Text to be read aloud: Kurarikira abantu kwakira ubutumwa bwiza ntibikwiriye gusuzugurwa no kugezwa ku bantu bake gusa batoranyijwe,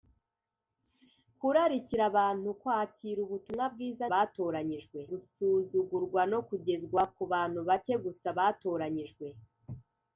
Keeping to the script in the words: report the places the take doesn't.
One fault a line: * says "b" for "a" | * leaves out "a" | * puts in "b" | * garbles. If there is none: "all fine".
* says "batoranyijwe" for "ntibikwiriye"